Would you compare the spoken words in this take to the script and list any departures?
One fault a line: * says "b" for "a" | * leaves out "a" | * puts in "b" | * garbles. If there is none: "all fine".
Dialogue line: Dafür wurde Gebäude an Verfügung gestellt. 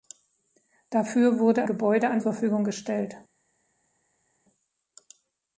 all fine